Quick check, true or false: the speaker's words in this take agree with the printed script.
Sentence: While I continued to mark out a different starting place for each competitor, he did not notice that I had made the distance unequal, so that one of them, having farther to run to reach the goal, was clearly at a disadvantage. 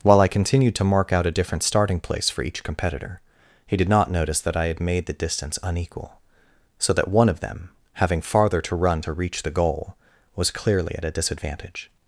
true